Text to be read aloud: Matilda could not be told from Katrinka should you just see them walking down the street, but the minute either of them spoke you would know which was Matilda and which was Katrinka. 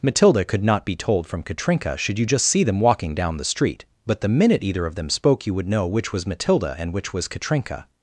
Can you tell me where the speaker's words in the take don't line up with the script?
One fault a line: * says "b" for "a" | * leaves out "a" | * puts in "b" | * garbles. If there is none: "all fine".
all fine